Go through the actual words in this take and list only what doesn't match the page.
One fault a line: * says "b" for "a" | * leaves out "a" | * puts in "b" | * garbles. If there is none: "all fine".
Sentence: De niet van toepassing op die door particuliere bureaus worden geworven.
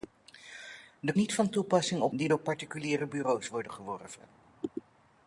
all fine